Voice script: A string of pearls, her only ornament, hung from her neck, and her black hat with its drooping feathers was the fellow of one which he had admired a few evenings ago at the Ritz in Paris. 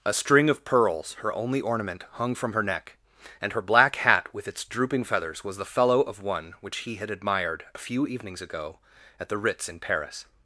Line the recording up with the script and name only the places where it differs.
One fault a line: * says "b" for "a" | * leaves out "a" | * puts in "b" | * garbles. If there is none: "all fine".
all fine